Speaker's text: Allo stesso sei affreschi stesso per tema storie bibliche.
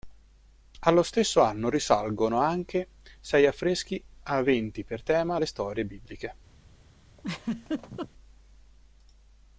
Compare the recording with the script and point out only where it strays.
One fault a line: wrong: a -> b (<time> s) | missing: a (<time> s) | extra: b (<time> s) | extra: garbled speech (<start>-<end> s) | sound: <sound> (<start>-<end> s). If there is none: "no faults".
extra: anno risalgono anche (1.4 s)
wrong: stesso -> aventi (4.2 s)
extra: le (5.4 s)
sound: laugh (7.2-8.1 s)